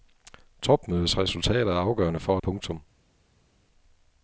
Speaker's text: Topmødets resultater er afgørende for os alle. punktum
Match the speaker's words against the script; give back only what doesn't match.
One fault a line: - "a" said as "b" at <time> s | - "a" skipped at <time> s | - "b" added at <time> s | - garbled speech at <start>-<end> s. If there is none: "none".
- "os alle" skipped at 2.4 s